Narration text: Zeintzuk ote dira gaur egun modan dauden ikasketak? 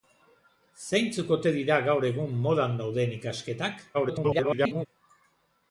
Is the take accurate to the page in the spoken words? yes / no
no